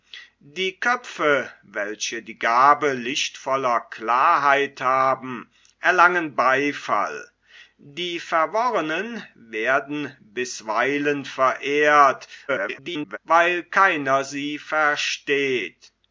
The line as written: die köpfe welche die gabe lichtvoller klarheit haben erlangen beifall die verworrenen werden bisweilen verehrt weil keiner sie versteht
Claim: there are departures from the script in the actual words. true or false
true